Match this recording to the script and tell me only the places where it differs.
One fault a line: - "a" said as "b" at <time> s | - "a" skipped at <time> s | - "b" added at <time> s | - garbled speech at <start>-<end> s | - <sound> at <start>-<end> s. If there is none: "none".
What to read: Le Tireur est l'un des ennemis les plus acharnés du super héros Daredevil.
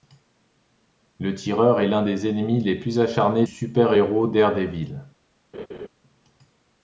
- "du" skipped at 3.5 s
- laugh at 5.5-5.9 s